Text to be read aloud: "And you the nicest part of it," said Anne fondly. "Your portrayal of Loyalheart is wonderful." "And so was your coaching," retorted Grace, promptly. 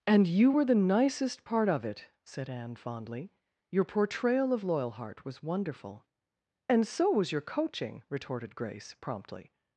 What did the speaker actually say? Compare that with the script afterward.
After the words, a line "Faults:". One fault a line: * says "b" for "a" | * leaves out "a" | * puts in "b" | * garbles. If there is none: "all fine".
"And you were the nicest part of it," said Anne fondly. "Your portrayal of Loyalheart was wonderful." "And so was your coaching," retorted Grace, promptly.
Faults:
* puts in "were"
* says "was" for "is"